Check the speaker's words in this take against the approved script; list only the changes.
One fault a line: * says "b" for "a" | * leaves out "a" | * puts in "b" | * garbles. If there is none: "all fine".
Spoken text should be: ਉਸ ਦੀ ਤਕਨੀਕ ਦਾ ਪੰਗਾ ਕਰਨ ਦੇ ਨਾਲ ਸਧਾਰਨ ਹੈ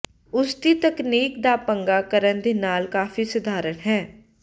* puts in "ਕਾਫ਼ੀ"